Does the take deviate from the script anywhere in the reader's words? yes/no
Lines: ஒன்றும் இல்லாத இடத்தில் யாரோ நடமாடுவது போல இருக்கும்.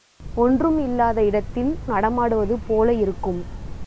yes